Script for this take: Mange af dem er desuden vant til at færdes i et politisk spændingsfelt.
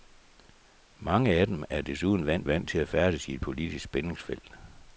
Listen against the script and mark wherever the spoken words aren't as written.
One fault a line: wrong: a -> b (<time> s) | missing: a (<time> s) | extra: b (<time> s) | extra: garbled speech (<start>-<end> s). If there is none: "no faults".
extra: vant (2.5 s)